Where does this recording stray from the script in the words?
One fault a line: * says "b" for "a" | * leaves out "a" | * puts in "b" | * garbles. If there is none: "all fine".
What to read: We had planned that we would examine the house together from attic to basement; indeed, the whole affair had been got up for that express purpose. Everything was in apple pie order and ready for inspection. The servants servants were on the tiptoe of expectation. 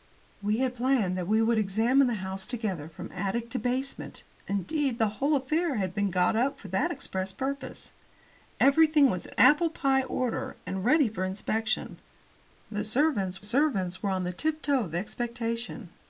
all fine